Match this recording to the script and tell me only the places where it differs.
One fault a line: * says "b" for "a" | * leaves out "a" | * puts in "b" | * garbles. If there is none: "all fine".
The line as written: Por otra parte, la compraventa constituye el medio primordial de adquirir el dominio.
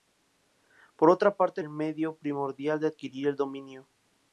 * leaves out "la compraventa constituye"